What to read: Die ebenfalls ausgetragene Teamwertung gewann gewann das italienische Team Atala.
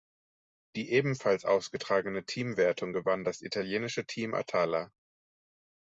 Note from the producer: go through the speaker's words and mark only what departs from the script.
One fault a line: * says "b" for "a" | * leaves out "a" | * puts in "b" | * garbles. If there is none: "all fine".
* leaves out "gewann"